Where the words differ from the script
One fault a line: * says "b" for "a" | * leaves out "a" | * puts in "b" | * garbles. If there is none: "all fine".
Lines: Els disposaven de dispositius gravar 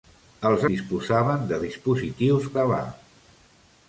all fine